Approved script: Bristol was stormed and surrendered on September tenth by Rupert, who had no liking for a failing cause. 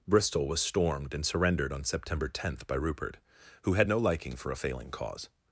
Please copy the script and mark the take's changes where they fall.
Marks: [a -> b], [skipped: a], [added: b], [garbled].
Bristol was stormed and surrendered on September tenth by Rupert, who had no liking for a failing cause.